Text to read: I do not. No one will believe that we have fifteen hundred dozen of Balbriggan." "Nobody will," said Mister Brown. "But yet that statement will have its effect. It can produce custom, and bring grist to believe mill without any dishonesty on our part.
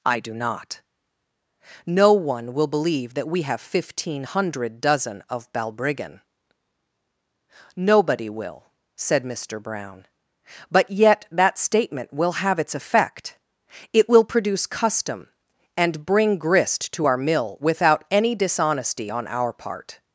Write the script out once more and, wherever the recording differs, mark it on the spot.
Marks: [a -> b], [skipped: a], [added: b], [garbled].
I do not. No one will believe that we have fifteen hundred dozen of Balbriggan." "Nobody will," said Mister Brown. "But yet that statement will have its effect. It [can -> will] produce custom, and bring grist to [believe -> our] mill without any dishonesty on our part.